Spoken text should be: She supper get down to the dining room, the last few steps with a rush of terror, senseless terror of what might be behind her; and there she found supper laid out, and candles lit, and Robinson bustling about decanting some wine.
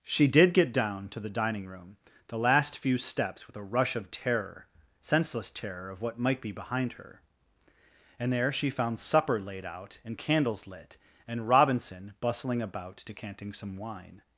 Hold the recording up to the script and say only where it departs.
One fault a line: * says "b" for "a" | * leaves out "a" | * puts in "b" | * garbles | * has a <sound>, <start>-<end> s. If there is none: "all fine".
* says "did" for "supper"